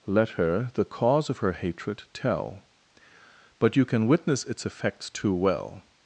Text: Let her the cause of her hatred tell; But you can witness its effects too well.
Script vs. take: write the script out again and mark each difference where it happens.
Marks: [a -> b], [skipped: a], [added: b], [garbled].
Let her the cause of her hatred tell; But you can witness its effects too well.